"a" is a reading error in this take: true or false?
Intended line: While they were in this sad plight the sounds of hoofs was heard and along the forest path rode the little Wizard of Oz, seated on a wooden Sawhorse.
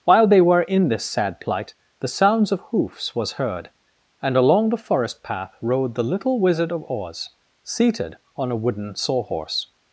false